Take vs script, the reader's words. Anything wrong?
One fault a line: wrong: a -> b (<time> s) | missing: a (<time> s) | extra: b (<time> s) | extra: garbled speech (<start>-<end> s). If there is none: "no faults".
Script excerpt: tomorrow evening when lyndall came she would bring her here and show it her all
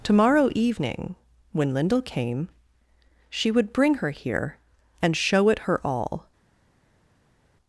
no faults